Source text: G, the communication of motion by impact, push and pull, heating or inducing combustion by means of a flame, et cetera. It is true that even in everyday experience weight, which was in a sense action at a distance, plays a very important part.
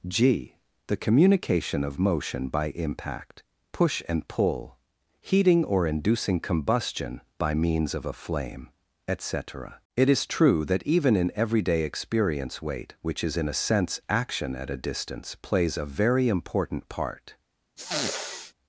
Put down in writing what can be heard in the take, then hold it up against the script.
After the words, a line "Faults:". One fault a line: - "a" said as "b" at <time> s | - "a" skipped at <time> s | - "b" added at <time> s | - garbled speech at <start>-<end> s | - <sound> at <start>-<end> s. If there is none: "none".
G, the communication of motion by impact, push and pull, heating or inducing combustion by means of a flame, et cetera. It is true that even in everyday experience weight, which is in a sense action at a distance, plays a very important part.
Faults:
- "was" said as "is" at 13.2 s
- sniff at 17.8-18.5 s